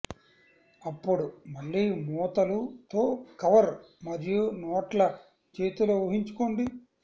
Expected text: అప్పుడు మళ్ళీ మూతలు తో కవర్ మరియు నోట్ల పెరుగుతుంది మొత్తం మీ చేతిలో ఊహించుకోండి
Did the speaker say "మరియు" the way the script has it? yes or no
yes